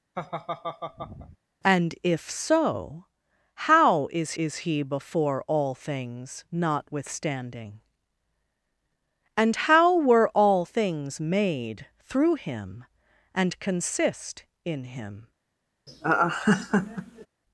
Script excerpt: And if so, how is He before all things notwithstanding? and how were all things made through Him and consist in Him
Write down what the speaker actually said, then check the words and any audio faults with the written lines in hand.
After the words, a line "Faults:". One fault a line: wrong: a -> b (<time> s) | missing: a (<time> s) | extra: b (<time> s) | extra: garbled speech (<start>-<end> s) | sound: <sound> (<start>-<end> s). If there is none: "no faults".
And if so, how is is He before all things notwithstanding? and how were all things made through Him and consist in Him
Faults:
sound: laugh (0.1-1.4 s)
extra: is (4.3 s)
sound: laugh (15.9-17.3 s)